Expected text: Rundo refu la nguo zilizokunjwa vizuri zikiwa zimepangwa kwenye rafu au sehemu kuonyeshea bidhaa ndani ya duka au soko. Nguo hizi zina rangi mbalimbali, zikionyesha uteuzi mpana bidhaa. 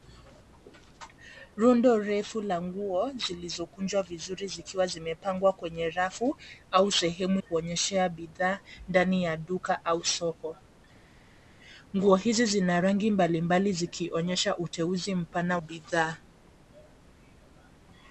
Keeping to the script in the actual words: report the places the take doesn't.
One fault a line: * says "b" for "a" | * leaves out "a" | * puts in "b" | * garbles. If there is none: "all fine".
all fine